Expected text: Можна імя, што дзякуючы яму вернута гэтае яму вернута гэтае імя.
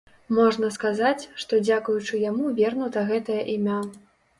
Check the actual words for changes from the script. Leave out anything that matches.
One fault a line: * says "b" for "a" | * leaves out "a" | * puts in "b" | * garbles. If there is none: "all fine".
* says "сказаць" for "імя"
* leaves out "яму вернута гэтае"